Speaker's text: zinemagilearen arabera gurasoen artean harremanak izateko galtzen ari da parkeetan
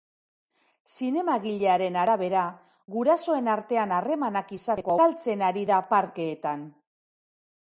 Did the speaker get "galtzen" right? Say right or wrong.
right